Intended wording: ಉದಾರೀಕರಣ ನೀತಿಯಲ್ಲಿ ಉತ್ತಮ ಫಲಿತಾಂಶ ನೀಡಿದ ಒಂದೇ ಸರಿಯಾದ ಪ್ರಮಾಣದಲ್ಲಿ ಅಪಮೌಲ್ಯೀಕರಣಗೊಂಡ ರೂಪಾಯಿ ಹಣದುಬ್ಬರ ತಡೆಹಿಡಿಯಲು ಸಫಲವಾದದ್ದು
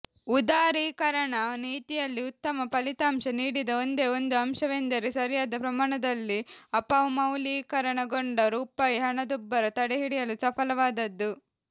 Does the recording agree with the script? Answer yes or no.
no